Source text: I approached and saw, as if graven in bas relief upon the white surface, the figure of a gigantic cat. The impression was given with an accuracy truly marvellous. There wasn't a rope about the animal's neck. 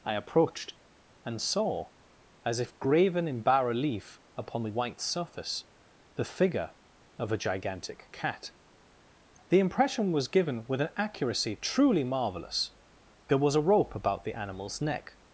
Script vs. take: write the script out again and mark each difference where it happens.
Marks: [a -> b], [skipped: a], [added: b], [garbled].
I approached and saw, as if graven in bas relief upon the white surface, the figure of a gigantic cat. The impression was given with an accuracy truly marvellous. There [wasn't -> was] a rope about the animal's neck.